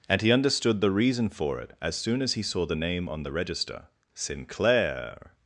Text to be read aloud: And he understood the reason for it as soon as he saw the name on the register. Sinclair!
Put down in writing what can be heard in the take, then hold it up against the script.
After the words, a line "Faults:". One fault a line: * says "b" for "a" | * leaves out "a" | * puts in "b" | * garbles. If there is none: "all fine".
And he understood the reason for it as soon as he saw the name on the register. Sinclair!
Faults:
all fine